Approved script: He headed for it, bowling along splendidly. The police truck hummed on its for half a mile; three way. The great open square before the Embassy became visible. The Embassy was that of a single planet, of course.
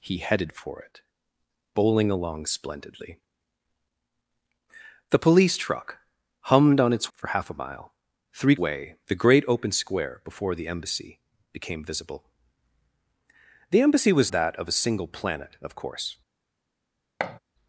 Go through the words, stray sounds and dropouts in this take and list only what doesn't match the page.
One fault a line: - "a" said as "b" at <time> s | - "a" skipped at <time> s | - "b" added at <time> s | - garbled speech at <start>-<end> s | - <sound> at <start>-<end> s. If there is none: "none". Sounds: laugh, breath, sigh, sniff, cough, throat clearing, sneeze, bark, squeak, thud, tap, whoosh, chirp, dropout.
- thud at 17.2-17.4 s